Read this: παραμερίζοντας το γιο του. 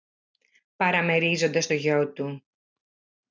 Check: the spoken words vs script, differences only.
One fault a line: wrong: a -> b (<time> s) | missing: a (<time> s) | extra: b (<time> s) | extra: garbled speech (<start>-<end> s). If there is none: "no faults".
no faults